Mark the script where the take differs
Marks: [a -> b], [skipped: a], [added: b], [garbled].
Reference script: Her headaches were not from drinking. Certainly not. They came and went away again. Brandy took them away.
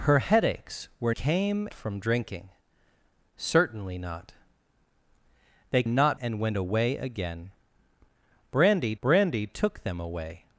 Her headaches were [not -> came] from drinking. Certainly not. They [came -> not] and went away again. Brandy [added: brandy] took them away.